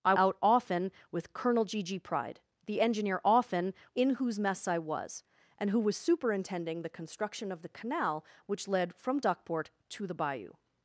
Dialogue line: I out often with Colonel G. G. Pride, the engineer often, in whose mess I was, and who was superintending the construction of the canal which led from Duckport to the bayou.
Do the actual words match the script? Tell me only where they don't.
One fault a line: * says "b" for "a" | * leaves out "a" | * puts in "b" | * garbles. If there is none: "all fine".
all fine